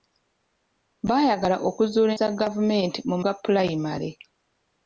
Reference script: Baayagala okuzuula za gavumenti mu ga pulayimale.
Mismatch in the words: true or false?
false